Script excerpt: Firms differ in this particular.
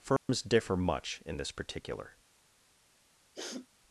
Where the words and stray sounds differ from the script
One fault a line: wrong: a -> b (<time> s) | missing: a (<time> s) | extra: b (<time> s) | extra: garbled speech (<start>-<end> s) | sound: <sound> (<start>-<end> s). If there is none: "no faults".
sound: dropout (0.2-0.3 s)
extra: much (0.8 s)
sound: sniff (3.3-3.7 s)